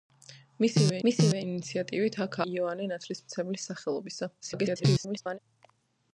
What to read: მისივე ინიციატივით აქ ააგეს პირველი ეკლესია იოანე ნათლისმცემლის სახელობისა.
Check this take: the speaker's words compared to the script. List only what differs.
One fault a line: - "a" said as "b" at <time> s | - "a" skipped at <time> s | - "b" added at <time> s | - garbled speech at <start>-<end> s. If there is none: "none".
- "მისივე" added at 1.1 s
- "ააგეს პირველი ეკლესია" skipped at 2.4 s
- garbled speech at 4.4-5.4 s